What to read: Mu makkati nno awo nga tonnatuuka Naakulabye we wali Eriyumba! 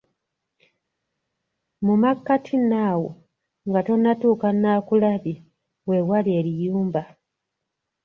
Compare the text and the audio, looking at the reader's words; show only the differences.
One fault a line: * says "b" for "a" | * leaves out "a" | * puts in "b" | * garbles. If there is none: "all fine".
all fine